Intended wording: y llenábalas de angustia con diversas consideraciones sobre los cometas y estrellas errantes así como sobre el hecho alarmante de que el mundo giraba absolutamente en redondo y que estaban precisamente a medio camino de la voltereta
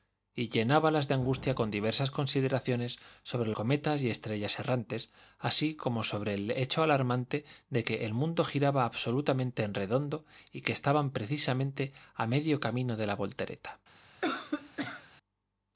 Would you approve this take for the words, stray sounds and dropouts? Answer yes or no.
no